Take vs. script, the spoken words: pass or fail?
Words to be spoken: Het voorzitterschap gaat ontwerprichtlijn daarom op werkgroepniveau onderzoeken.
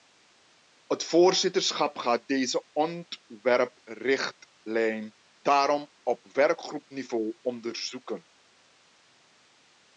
fail